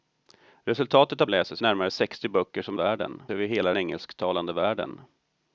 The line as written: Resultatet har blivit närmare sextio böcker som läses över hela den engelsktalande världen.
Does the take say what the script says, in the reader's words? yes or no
no